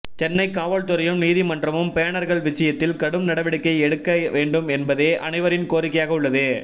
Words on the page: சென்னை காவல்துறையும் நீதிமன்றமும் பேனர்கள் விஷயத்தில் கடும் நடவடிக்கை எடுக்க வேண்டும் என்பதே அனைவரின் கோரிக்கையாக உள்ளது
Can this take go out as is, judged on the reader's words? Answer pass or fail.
pass